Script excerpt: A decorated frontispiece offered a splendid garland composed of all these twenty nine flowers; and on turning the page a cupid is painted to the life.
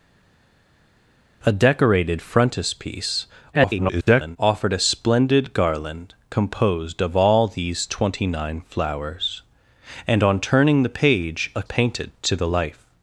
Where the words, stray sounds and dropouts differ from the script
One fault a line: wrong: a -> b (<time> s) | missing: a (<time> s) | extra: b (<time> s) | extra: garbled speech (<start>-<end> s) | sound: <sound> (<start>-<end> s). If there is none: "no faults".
extra: garbled speech (3.5-4.4 s)
missing: cupid is (11.6 s)